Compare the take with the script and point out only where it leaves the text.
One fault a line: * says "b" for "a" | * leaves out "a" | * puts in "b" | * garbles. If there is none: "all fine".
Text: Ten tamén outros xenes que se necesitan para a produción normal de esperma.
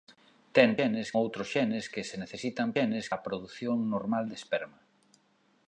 * says "xenes" for "tamén"
* says "xenes" for "para"